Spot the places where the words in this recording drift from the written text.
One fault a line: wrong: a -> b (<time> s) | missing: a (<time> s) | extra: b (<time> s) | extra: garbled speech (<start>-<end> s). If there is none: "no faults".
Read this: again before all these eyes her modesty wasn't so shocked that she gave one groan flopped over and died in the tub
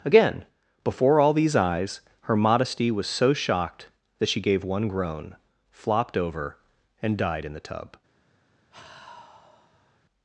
wrong: wasn't -> was (2.9 s)